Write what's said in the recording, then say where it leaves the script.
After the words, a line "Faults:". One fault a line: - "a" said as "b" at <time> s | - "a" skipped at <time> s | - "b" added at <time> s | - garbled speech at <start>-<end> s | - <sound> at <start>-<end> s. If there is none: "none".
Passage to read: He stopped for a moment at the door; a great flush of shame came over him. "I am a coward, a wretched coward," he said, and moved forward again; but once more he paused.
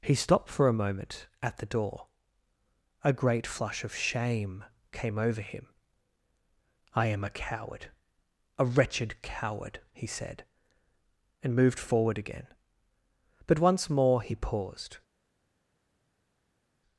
He stopped for a moment at the door; a great flush of shame came over him. "I am a coward, a wretched coward," he said, and moved forward again; but once more he paused.
Faults:
none